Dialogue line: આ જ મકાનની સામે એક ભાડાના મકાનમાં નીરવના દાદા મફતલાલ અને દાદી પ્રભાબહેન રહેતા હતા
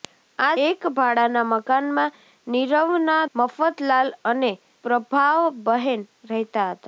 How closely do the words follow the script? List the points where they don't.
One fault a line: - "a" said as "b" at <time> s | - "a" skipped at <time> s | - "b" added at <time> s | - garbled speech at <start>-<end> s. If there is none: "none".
- "જ મકાનની સામે" skipped at 0.5 s
- "દાદા" skipped at 3.2 s
- "દાદી" skipped at 4.5 s